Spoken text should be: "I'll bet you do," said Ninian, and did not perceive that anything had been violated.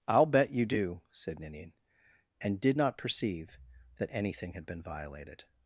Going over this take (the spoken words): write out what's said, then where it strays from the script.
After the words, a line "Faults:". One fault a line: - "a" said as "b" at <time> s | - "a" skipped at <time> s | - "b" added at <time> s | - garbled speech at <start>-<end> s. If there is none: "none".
"I'll bet you do," said Ninian, and did not perceive that anything had been violated.
Faults:
none